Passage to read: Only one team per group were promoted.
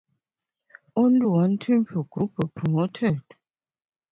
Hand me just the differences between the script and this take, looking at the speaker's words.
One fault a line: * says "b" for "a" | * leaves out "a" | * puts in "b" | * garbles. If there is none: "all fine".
all fine